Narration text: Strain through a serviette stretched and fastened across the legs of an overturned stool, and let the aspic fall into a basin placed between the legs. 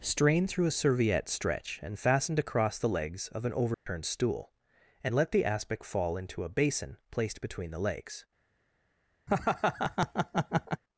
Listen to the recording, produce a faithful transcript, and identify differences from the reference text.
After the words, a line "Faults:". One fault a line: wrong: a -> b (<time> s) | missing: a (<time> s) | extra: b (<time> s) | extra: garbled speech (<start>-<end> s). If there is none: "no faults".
Strain through a serviette stretch and fastened across the legs of an overturned stool, and let the aspic fall into a basin placed between the legs.
Faults:
wrong: stretched -> stretch (1.3 s)